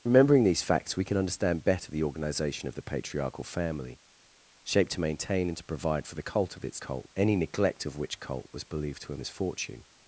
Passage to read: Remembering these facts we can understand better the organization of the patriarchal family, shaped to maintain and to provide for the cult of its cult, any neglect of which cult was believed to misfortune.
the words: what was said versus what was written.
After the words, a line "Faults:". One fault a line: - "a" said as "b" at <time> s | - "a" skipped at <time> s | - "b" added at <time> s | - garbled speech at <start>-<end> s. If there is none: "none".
Remembering these facts we can understand better the organization of the patriarchal family, shaped to maintain and to provide for the cult of its cult, any neglect of which cult was believed to misfortune.
Faults:
none